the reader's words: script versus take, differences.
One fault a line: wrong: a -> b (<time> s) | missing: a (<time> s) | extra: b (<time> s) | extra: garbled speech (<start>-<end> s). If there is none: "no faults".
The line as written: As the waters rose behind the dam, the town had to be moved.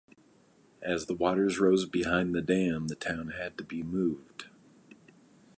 no faults